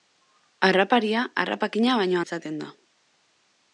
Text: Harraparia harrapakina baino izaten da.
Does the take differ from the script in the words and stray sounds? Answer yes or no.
no